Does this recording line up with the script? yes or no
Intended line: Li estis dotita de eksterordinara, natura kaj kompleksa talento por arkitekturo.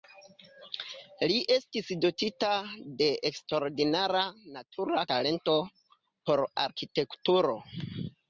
no